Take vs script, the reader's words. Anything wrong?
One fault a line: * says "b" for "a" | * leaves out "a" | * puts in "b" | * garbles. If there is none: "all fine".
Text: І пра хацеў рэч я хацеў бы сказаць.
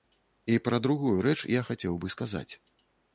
* says "другую" for "хацеў"